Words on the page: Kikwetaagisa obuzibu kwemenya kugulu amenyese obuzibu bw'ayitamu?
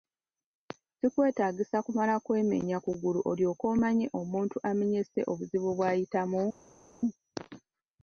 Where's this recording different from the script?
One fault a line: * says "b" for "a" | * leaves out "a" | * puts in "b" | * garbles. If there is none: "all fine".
* says "kumala" for "obuzibu"
* puts in "olyoke omanye omuntu"